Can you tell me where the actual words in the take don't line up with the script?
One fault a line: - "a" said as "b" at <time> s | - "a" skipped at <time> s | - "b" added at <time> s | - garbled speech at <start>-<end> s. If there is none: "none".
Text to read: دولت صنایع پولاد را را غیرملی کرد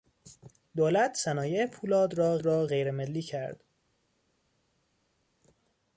none